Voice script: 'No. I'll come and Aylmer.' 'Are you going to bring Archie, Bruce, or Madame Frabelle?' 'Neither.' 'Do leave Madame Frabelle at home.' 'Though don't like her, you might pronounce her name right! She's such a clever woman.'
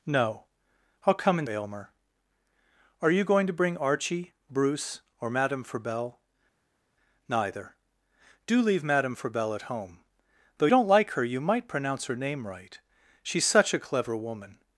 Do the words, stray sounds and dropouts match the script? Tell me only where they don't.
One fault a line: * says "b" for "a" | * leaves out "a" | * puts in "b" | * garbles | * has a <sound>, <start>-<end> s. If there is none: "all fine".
all fine